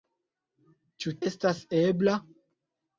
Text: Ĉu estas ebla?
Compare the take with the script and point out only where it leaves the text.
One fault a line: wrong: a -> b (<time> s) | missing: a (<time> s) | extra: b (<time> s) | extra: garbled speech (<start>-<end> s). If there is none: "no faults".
no faults